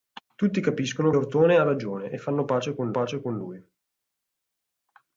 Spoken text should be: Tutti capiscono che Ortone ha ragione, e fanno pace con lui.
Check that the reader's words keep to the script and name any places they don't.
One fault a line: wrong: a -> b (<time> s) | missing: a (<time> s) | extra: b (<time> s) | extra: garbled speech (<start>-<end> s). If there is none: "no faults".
missing: che (1.1 s)
extra: pace con (2.9 s)